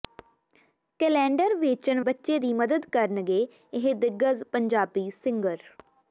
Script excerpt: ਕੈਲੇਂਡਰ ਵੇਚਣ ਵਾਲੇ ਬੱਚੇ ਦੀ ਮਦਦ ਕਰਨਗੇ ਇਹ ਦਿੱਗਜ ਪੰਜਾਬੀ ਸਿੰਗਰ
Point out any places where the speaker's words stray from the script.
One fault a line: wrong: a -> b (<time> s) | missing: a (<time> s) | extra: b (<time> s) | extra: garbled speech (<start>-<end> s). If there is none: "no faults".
missing: ਵਾਲੇ (2.0 s)